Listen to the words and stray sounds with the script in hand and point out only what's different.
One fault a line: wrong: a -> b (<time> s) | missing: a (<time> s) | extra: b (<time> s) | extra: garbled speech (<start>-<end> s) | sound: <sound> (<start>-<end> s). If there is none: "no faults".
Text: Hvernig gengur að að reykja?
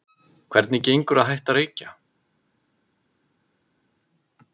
extra: hætta (1.3 s)